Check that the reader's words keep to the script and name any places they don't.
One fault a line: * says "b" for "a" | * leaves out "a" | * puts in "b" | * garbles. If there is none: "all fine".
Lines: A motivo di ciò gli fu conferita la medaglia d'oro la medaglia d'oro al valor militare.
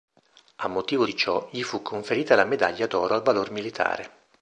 * leaves out "la medaglia d'oro"